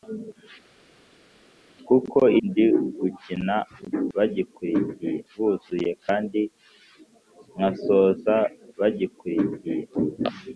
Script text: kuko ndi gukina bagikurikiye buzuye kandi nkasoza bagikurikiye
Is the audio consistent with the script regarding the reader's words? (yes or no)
yes